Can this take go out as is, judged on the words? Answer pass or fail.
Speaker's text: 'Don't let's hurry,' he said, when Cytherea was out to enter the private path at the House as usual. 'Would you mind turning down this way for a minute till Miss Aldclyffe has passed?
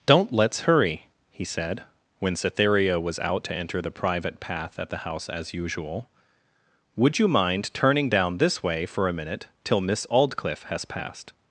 pass